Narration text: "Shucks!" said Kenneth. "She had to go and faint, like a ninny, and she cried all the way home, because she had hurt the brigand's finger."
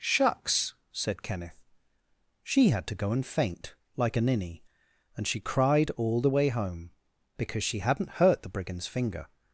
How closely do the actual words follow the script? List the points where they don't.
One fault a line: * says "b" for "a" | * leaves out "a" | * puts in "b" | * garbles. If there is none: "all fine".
* says "hadn't" for "had"